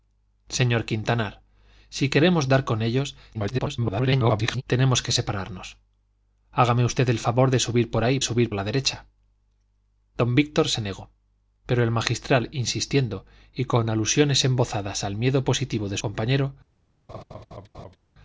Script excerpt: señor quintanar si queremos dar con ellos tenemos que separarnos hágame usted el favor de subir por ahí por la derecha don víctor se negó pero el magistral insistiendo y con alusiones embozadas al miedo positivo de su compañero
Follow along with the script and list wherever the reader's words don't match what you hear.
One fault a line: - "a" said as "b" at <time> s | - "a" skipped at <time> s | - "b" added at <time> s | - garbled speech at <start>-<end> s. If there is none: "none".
- garbled speech at 3.3-4.6 s
- "por" said as "subir" at 8.2 s
- "su" skipped at 16.0 s